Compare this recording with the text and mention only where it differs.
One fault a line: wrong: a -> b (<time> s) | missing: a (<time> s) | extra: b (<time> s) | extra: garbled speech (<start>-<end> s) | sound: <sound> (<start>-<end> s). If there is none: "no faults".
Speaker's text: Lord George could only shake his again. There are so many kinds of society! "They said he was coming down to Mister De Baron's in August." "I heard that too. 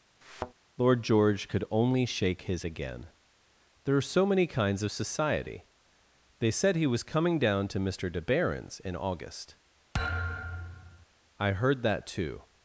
sound: thud (0.2-0.5 s)
sound: thud (9.9-11.1 s)